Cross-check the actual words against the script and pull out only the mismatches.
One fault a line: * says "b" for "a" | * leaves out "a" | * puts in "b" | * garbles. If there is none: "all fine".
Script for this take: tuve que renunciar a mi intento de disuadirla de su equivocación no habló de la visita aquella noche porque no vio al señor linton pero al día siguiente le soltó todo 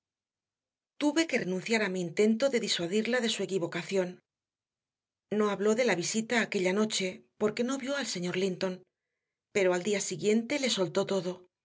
all fine